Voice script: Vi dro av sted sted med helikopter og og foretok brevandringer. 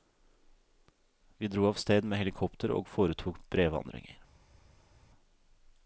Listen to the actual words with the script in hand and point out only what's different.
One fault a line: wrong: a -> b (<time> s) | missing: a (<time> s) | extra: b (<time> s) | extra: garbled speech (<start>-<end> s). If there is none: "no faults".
missing: sted (2.0 s)
missing: og (2.9 s)